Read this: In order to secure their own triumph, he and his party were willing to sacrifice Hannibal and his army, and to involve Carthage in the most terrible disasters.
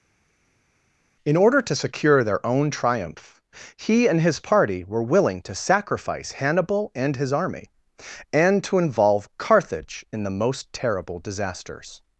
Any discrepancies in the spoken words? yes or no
no